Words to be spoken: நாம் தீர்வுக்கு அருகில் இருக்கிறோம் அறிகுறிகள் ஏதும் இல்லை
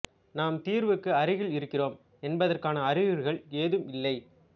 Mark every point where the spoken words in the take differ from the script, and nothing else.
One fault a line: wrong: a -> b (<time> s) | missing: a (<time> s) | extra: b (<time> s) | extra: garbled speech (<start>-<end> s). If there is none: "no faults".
extra: என்பதற்கான (2.2 s)